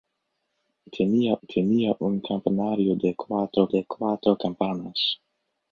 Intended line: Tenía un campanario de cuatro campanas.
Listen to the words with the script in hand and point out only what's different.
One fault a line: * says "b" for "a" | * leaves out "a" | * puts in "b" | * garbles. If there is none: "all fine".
* puts in "tenía"
* puts in "de cuatro"